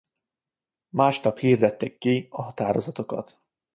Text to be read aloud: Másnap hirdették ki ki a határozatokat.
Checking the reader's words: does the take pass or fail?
fail